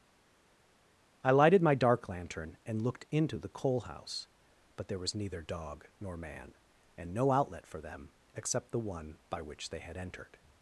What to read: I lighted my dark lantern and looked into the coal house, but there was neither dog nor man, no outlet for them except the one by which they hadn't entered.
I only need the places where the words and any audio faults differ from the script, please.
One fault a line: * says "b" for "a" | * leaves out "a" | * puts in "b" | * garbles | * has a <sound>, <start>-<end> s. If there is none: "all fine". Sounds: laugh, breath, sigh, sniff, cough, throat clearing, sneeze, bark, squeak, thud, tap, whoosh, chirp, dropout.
* puts in "and"
* says "had" for "hadn't"